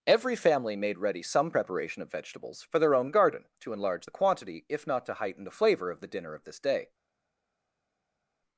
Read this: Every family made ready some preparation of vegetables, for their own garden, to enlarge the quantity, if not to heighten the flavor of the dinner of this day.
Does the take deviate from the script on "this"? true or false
false